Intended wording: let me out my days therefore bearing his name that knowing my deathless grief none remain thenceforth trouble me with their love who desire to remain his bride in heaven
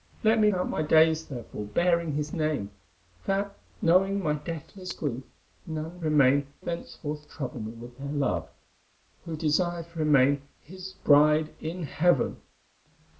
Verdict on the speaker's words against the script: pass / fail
pass